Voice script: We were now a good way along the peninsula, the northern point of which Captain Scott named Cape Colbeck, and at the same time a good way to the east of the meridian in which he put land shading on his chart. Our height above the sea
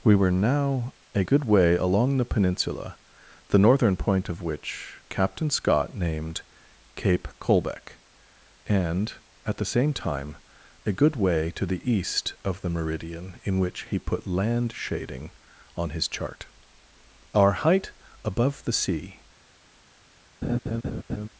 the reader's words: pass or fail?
pass